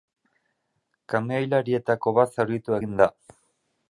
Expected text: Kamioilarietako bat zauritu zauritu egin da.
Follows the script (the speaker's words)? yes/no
no